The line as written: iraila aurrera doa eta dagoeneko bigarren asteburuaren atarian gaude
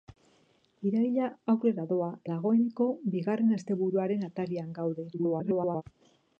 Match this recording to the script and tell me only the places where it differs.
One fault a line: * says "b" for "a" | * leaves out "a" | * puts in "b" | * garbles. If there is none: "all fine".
* leaves out "eta"
* garbles